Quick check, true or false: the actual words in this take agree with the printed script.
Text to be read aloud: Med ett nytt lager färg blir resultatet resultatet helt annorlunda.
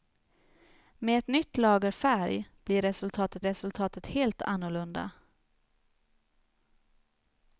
true